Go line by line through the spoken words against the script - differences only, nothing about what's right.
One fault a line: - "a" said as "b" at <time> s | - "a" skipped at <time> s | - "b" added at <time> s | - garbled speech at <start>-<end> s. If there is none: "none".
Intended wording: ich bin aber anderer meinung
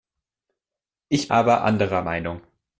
- "bin" skipped at 1.3 s